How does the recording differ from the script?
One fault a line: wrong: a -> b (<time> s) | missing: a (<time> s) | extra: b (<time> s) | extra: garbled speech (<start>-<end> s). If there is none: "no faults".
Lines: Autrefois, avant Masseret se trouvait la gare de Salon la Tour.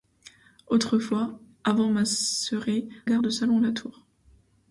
missing: se trouvait la (2.9 s)